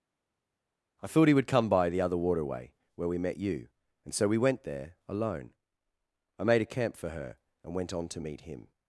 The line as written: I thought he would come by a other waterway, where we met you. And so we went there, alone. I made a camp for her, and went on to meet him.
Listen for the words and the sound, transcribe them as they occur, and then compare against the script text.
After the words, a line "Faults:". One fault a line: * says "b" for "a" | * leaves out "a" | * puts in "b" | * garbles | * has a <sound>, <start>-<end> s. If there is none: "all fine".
I thought he would come by the other waterway, where we met you. And so we went there, alone. I made a camp for her, and went on to meet him.
Faults:
* says "the" for "a"